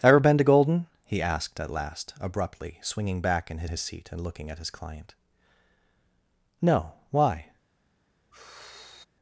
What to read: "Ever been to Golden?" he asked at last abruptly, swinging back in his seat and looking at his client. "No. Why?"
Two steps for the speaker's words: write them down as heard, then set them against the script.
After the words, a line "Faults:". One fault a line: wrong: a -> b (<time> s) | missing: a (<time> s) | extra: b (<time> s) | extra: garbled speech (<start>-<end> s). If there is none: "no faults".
"Ever been to Golden?" he asked at last abruptly, swinging back in his his seat and looking at his client. "No. Why?"
Faults:
extra: his (3.7 s)